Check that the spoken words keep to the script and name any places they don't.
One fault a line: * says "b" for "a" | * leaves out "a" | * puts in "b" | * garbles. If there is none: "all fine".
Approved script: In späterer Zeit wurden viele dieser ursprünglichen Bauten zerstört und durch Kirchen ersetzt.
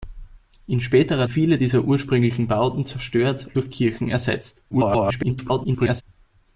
* leaves out "Zeit wurden"
* leaves out "und"
* garbles